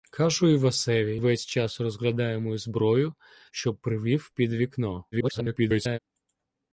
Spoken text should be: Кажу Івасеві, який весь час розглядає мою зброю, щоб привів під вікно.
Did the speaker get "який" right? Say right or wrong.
wrong